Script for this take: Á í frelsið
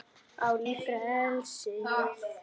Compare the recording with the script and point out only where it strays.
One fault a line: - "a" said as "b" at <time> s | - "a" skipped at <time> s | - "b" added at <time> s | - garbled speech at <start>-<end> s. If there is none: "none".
none